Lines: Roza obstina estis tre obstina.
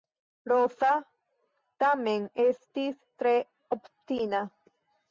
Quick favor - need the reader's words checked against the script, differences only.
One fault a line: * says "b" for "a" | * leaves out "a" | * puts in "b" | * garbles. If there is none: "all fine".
* says "tamen" for "obstina"